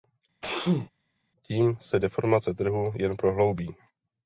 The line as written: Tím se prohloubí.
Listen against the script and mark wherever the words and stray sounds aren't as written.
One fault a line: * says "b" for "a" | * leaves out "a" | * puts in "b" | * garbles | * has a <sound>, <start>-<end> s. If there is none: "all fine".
* has a sneeze, 0.4-0.9 s
* puts in "deformace trhu jen"